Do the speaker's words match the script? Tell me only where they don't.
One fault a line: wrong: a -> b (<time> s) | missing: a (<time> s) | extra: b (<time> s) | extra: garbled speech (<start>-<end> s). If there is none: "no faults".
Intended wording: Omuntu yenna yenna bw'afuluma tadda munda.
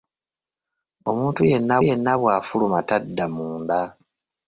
no faults